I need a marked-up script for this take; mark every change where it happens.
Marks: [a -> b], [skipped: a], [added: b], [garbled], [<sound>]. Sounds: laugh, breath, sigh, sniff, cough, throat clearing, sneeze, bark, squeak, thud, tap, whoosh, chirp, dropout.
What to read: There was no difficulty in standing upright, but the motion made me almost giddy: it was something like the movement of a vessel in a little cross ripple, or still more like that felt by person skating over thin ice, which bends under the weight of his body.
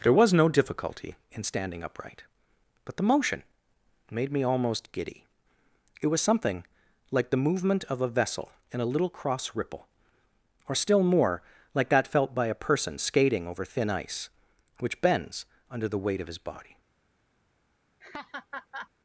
There was no difficulty in standing upright, but the motion made me almost giddy: it was something like the movement of a vessel in a little cross ripple, or still more like that felt by [added: a] person skating over thin ice, which bends under the weight of his body. [laugh]